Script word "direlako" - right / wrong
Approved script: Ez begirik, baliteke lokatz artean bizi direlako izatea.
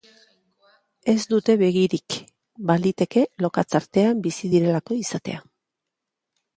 right